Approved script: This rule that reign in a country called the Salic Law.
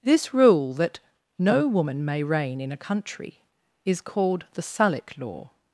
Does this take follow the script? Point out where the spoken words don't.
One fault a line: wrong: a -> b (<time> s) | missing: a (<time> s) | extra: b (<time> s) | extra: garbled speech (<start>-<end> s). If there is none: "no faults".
extra: no woman may (1.4 s)
extra: is (3.8 s)